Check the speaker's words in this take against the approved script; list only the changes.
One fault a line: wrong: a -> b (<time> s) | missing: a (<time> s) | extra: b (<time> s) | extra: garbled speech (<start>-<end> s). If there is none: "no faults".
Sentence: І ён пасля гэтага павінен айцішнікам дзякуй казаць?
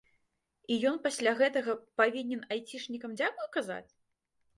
no faults